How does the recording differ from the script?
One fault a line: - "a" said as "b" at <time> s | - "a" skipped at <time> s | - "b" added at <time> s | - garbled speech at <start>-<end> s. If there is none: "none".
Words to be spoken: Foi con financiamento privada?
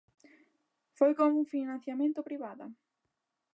none